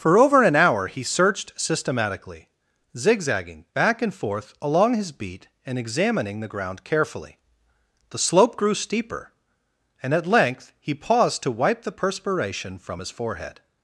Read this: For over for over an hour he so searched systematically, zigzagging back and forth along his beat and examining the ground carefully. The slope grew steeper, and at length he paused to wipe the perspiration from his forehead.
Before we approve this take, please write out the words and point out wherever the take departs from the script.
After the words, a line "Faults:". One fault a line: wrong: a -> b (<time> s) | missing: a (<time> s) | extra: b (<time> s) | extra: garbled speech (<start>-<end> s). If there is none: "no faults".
For over an hour he searched systematically, zigzagging back and forth along his beat and examining the ground carefully. The slope grew steeper, and at length he paused to wipe the perspiration from his forehead.
Faults:
missing: for over (0.4 s)
missing: so (1.0 s)